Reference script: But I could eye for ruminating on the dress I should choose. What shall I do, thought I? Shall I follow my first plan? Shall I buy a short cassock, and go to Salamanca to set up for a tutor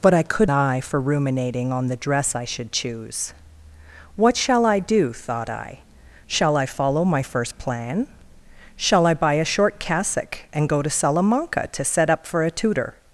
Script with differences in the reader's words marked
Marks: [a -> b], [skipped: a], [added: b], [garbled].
But I could eye for ruminating on the dress I should choose. What shall I do, thought I? Shall I follow my first plan? Shall I buy a short cassock, and go to Salamanca to set up for a tutor